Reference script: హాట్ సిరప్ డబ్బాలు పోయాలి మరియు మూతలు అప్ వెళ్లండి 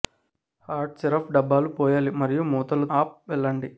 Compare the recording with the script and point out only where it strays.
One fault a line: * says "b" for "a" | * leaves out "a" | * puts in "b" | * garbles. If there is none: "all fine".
all fine